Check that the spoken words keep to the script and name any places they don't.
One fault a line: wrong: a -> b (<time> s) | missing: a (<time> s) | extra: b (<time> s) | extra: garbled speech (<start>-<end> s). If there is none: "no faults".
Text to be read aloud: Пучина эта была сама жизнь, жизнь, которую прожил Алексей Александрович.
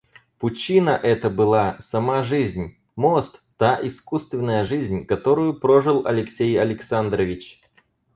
extra: мост та искусственная (3.0 s)